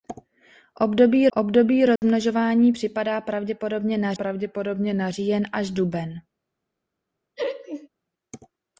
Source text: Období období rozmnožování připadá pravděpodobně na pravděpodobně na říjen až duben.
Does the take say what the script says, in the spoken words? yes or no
yes